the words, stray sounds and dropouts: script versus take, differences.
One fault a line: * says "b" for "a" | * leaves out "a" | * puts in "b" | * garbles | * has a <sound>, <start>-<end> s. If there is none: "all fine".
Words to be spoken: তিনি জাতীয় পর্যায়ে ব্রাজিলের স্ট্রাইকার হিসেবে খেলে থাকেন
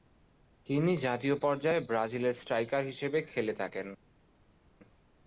all fine